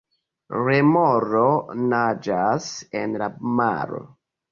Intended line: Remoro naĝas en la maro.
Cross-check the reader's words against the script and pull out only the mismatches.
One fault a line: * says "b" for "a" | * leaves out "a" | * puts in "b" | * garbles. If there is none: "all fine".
all fine